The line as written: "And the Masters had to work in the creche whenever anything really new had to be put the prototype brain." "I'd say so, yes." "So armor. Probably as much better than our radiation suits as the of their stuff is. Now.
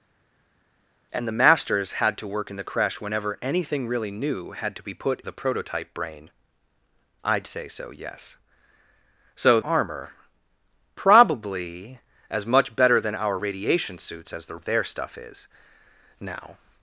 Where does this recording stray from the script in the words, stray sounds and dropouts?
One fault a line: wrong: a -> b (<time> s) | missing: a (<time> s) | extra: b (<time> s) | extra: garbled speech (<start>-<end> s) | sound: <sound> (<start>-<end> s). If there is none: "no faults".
no faults